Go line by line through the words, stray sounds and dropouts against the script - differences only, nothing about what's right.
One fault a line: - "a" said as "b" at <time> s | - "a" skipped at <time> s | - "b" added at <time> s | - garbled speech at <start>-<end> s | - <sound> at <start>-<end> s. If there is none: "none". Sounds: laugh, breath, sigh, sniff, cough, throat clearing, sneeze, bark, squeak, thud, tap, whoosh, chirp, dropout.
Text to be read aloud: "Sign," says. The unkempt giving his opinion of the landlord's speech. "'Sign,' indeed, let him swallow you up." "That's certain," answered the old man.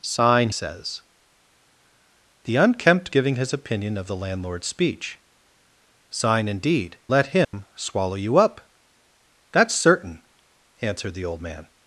- dropout at 7.4-7.5 s